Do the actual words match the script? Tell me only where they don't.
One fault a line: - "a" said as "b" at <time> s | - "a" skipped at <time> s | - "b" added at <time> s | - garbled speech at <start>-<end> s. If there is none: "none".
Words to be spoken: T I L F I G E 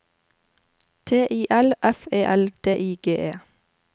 - "E L D" added at 2.1 s